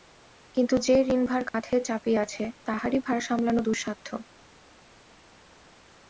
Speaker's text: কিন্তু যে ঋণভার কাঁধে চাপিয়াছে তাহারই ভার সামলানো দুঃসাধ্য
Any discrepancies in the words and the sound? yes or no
yes